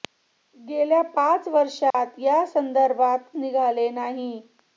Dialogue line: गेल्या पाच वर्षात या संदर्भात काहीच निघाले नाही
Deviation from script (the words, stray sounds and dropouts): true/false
true